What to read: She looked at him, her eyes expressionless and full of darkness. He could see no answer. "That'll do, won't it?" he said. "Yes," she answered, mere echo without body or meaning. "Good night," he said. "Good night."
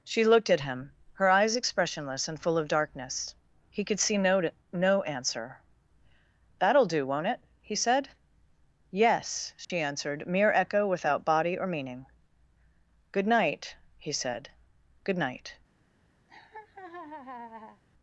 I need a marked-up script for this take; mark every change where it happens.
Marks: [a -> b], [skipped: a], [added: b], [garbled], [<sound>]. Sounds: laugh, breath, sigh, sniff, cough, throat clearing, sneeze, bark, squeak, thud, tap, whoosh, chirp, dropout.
She looked at him, her eyes expressionless and full of darkness. He could see no [added: no] answer. "That'll do, won't it?" he said. "Yes," she [dropout] answered, mere echo without body or meaning. "Good night," he said. "Good night." [laugh]